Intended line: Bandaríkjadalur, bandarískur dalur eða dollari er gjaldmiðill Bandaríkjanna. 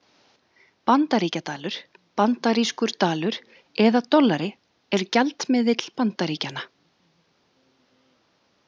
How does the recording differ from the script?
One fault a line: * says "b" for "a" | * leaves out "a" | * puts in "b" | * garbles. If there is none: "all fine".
all fine